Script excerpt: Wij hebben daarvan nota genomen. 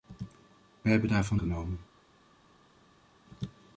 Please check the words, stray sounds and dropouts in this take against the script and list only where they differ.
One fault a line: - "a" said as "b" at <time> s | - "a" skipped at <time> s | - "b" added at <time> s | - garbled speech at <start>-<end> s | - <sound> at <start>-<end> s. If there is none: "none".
- "nota" skipped at 1.4 s